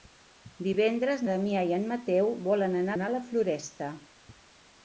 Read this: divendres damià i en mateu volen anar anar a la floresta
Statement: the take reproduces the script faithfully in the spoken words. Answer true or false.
true